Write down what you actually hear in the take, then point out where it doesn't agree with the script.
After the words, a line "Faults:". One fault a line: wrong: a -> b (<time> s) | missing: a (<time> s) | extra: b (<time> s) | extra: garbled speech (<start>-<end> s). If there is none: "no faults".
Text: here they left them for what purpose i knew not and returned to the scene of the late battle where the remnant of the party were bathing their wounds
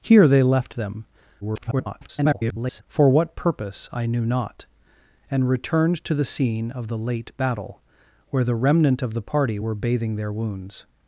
here they left them [garbled] for what purpose i knew not and returned to the scene of the late battle where the remnant of the party were bathing their wounds
Faults:
extra: garbled speech (1.4-2.8 s)